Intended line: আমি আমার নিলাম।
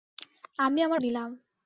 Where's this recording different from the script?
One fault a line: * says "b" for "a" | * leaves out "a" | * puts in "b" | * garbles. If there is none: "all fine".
all fine